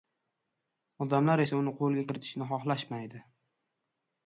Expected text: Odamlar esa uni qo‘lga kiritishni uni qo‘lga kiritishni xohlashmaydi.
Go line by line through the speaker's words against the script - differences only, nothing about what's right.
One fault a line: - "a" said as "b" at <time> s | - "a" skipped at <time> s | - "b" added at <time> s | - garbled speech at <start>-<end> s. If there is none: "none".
- "uni qo‘lga kiritishni" skipped at 2.5 s